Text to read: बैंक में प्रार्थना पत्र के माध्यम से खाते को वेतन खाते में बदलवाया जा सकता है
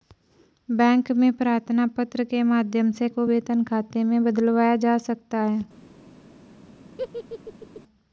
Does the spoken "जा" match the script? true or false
true